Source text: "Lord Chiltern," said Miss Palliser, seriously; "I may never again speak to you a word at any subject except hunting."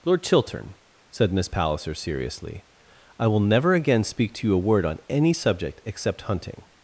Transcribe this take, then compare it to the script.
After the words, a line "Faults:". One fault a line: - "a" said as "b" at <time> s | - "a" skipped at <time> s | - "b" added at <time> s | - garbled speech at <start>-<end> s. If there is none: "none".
"Lord Chiltern," said Miss Palliser, seriously; "I will never again speak to you a word on any subject except hunting."
Faults:
- "may" said as "will" at 3.3 s
- "at" said as "on" at 4.8 s